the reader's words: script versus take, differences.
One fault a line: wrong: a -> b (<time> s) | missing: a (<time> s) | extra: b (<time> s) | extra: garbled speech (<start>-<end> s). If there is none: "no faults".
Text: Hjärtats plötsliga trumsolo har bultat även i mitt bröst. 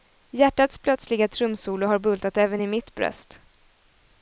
no faults